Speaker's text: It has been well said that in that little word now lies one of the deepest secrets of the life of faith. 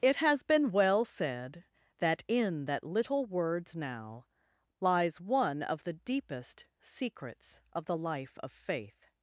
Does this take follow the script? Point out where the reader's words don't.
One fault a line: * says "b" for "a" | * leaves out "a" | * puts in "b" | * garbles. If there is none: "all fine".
* says "words" for "word"